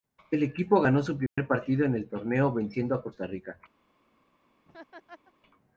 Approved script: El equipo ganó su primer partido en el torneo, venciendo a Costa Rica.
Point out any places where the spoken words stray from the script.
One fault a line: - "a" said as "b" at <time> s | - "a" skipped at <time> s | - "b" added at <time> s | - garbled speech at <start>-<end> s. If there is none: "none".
none